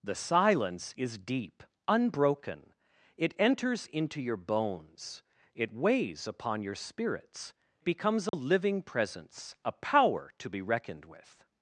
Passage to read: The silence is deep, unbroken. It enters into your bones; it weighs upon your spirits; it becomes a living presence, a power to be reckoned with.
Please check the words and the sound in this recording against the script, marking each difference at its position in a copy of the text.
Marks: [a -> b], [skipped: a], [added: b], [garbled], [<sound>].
The silence is deep, unbroken. It enters into your bones; it weighs upon your spirits; [skipped: it] becomes a [dropout] living presence, a power to be reckoned with.